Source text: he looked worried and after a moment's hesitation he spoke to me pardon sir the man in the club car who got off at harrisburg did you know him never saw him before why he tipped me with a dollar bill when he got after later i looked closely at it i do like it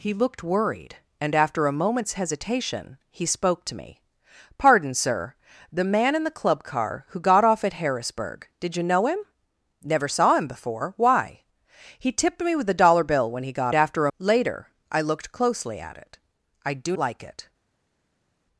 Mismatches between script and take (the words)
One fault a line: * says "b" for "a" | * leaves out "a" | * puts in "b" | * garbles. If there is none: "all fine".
all fine